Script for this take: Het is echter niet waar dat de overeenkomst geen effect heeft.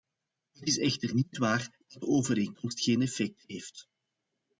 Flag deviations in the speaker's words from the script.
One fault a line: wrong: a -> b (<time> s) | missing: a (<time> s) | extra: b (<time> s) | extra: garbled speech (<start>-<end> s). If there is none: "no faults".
no faults